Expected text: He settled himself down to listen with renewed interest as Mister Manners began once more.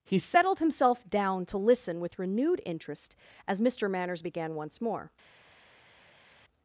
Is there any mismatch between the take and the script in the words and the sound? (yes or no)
no